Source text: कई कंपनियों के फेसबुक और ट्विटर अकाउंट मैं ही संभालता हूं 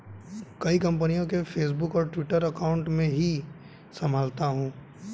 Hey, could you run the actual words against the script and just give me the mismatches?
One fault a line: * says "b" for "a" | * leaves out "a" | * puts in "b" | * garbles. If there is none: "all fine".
all fine